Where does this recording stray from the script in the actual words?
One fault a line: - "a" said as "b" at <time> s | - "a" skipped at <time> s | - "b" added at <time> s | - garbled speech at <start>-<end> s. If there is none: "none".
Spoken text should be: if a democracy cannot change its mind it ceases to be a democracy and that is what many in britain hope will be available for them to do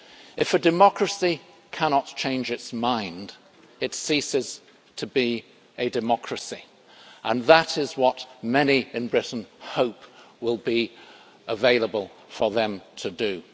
none